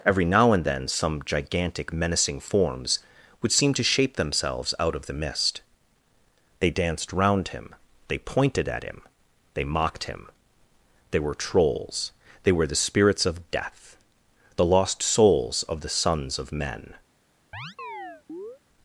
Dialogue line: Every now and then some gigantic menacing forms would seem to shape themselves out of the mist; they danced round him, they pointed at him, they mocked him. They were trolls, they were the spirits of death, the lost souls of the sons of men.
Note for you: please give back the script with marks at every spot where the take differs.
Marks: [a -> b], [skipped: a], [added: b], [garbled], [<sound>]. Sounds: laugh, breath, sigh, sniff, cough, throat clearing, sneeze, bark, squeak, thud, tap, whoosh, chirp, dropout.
Every now and then some gigantic menacing forms would seem to shape themselves out of the mist; they danced round him, they pointed at him, they mocked him. They were trolls, they were the spirits of death, the lost souls of the sons of men. [chirp]